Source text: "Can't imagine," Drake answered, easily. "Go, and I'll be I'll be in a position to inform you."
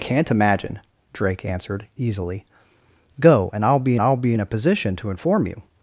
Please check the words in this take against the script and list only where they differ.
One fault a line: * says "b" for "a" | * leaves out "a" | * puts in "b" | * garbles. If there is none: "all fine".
all fine